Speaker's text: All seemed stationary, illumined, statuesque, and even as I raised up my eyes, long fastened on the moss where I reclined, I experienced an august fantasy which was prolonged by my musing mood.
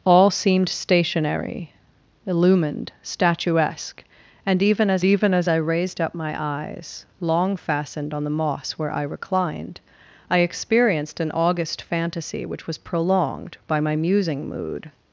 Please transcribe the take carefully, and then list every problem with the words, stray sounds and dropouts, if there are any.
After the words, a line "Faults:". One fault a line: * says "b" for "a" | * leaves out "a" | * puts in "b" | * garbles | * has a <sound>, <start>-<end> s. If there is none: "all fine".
All seemed stationary, illumined, statuesque, and even as even as I raised up my eyes, long fastened on the moss where I reclined, I experienced an august fantasy which was prolonged by my musing mood.
Faults:
* puts in "even as"